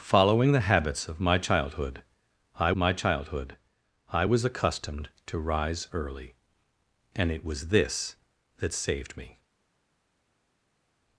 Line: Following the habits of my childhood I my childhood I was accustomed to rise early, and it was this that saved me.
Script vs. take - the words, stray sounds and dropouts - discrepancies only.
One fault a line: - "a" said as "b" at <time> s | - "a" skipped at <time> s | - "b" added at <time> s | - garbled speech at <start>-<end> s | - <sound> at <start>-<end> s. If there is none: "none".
none